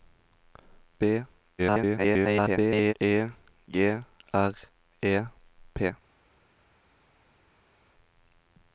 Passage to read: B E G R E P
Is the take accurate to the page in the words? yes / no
no